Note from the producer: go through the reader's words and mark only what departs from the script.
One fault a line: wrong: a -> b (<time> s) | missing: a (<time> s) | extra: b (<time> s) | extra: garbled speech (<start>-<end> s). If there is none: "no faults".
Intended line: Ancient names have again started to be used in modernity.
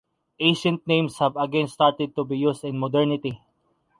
no faults